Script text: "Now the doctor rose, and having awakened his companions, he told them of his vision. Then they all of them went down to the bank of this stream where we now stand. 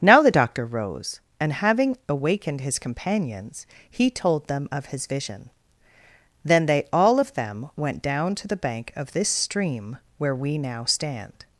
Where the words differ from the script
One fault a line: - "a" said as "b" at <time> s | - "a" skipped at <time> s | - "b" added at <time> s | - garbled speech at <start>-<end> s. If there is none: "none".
none